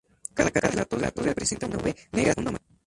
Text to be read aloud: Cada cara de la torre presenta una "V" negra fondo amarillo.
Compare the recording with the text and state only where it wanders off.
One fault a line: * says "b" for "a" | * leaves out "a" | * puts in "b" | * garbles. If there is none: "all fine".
all fine